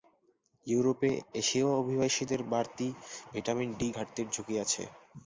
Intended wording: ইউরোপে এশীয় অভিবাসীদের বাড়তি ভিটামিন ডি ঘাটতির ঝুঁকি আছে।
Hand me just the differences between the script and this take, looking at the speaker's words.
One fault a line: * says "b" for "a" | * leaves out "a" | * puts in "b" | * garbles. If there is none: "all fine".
all fine